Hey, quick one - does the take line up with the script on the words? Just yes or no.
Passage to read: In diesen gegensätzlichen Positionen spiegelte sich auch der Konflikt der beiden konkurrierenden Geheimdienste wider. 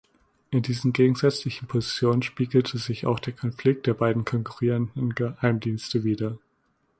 yes